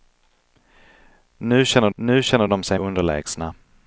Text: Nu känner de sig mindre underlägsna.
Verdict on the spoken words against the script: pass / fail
fail